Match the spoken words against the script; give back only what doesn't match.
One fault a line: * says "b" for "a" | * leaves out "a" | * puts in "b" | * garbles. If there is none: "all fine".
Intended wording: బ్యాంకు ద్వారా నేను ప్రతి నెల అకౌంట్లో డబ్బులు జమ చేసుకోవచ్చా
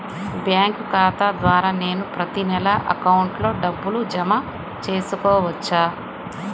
* puts in "ఖాతా"